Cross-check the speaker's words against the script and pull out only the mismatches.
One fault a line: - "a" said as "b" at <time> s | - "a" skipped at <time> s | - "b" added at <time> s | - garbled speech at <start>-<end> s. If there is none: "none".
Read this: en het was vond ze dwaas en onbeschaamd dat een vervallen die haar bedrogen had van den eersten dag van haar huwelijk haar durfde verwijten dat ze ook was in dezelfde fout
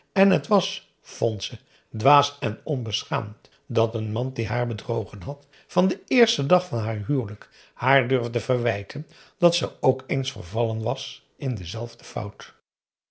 - "vervallen" said as "man" at 4.1 s
- "eens vervallen" added at 10.1 s